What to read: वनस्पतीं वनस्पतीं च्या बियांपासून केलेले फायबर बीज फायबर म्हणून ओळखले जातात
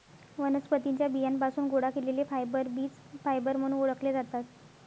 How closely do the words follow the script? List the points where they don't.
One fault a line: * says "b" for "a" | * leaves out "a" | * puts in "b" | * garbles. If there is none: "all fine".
* leaves out "वनस्पतीं"
* puts in "गोळा"